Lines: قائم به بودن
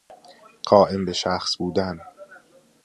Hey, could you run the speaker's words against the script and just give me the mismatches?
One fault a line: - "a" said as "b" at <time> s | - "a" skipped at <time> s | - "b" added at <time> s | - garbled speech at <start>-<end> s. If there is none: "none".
- "شخص" added at 1.1 s